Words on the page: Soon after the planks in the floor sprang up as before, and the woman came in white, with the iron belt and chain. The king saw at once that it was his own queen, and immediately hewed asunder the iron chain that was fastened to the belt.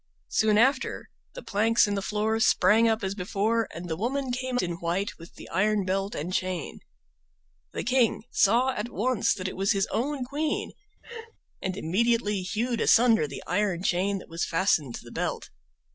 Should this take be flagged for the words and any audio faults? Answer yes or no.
yes